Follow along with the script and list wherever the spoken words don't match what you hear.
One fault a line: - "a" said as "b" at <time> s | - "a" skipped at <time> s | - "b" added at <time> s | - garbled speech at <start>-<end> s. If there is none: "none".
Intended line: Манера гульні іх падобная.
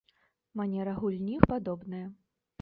none